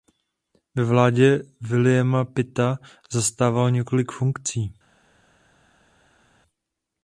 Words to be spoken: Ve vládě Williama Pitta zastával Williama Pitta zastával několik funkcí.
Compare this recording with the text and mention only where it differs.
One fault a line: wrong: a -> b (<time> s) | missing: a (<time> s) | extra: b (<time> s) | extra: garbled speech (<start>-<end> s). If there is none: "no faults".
missing: Williama Pitta zastával (3.7 s)